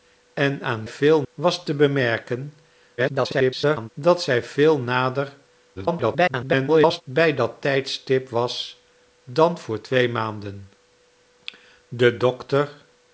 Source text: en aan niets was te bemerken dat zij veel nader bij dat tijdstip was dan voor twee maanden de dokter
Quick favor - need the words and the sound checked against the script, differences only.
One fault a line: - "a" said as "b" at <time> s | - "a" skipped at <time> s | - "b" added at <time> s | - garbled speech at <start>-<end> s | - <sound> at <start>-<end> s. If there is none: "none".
- "niets" said as "veel" at 0.9 s
- garbled speech at 3.0-3.9 s
- garbled speech at 5.8-7.0 s